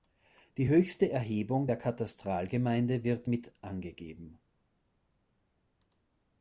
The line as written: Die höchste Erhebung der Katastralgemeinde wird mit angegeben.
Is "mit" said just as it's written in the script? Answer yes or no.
yes